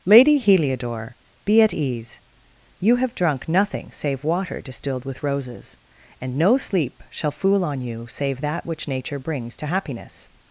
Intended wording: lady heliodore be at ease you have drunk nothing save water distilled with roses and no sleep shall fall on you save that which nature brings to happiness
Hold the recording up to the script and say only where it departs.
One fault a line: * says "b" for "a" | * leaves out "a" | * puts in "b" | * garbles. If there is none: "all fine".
* says "fool" for "fall"